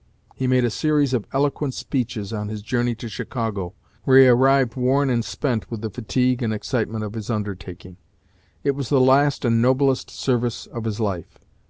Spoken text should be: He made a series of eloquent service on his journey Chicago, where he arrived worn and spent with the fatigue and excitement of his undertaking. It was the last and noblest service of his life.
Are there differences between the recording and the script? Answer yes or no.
yes